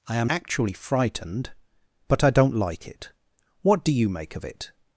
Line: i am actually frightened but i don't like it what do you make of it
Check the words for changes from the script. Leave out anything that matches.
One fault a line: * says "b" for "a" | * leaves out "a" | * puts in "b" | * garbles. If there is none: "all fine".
all fine